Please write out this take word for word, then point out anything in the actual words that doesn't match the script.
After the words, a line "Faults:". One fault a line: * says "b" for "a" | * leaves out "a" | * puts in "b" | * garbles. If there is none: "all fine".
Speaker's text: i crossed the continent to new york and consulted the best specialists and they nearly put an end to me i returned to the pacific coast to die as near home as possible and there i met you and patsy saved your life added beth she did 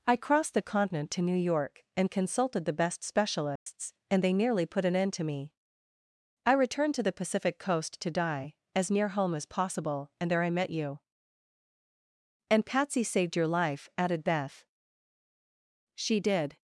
i crossed the continent to new york and consulted the best specialists and they nearly put an end to me i returned to the pacific coast to die as near home as possible and there i met you and patsy saved your life added beth she did
Faults:
all fine